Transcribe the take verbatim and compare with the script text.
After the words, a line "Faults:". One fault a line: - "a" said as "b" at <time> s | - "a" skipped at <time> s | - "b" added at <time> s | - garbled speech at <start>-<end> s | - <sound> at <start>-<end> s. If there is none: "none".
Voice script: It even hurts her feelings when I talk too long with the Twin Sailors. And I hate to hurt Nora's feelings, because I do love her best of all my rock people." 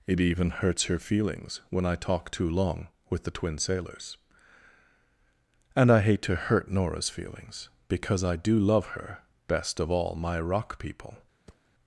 It even hurts her feelings when I talk too long with the Twin Sailors. And I hate to hurt Nora's feelings, because I do love her best of all my rock people."
Faults:
- thud at 11.5-11.7 s